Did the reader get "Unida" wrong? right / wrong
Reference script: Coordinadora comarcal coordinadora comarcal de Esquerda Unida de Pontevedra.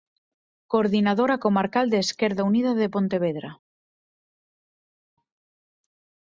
right